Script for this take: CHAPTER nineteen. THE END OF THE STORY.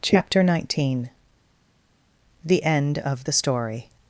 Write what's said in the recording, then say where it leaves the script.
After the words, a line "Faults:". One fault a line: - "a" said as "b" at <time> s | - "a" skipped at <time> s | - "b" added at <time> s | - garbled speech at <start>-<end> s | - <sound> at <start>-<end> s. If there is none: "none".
CHAPTER nineteen. THE END OF THE STORY.
Faults:
none